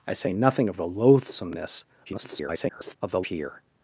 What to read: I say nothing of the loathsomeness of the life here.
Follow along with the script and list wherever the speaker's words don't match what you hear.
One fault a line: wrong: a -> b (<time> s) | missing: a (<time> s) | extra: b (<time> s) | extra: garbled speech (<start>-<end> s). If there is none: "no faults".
extra: garbled speech (2.1-3.0 s)
missing: life (3.2 s)